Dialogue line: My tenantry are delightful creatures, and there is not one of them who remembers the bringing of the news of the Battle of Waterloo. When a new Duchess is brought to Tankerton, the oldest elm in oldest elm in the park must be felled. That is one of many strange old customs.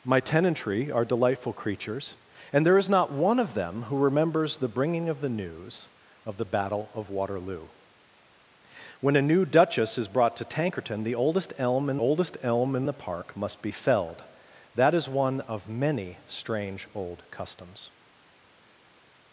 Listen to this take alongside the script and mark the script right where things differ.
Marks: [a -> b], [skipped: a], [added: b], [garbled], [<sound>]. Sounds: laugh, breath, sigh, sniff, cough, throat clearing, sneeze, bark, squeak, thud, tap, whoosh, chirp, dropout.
My tenantry are delightful creatures, and there is not one of them who remembers the bringing of the news of the Battle of Waterloo. When a new Duchess is brought to Tankerton, the oldest elm in oldest elm in the park must be felled. That is one of many strange old customs.